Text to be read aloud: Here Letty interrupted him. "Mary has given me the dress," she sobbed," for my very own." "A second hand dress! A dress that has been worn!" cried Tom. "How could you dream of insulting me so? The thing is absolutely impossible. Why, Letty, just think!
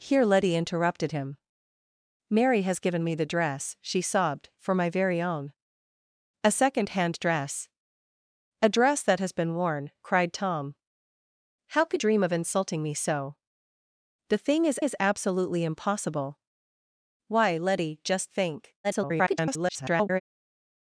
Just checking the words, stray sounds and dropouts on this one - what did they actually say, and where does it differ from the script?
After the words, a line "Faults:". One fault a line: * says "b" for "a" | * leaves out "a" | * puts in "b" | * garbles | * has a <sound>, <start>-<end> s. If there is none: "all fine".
Here Letty interrupted him. "Mary has given me the dress," she sobbed," for my very own." "A second hand dress! A dress that has been worn!" cried Tom. "How could dream of insulting me so? The thing is is absolutely impossible. Why, Letty, just think! [garbled]
Faults:
* leaves out "you"
* puts in "is"
* garbles